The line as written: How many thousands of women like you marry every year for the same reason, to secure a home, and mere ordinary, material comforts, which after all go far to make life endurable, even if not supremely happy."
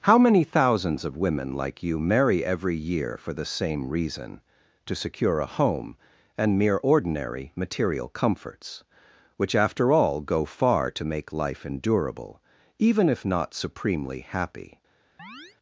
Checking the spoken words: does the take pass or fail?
pass